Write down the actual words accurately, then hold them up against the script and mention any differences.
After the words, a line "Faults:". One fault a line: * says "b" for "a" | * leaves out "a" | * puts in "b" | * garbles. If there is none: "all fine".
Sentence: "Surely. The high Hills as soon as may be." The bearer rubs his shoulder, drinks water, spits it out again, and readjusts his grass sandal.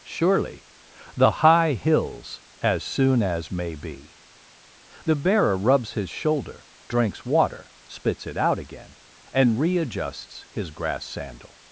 "Surely. The high Hills as soon as may be." The bearer rubs his shoulder, drinks water, spits it out again, and readjusts his grass sandal.
Faults:
all fine